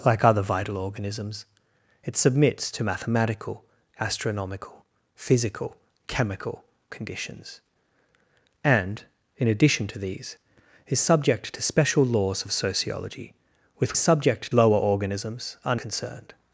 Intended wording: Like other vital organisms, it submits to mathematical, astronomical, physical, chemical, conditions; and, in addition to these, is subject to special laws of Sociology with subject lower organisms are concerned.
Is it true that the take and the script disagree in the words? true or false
false